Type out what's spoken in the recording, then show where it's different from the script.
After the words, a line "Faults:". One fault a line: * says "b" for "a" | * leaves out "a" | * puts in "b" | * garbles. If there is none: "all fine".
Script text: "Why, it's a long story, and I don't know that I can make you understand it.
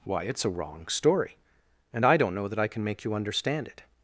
"Why, it's a wrong story, and I don't know that I can make you understand it.
Faults:
* says "wrong" for "long"